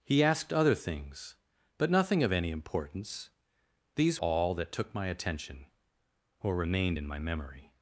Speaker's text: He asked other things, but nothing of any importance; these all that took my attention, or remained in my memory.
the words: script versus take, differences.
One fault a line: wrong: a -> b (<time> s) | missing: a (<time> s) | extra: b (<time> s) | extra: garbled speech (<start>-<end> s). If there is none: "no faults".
no faults